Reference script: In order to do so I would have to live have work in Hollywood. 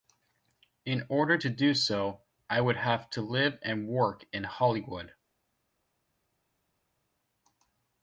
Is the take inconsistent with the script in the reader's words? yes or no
yes